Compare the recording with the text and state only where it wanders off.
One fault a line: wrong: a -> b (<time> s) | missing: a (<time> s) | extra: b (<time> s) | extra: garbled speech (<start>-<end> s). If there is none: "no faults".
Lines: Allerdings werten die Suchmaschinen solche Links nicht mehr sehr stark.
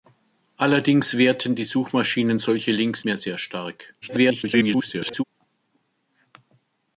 missing: nicht (3.0 s)
extra: garbled speech (4.0-5.2 s)